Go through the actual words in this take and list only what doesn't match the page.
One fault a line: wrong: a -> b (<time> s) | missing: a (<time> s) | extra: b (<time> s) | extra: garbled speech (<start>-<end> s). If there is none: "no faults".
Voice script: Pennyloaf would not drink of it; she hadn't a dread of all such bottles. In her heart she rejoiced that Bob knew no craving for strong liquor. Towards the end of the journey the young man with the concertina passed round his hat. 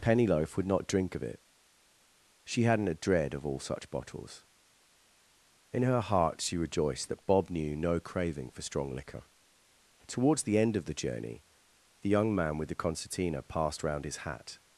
no faults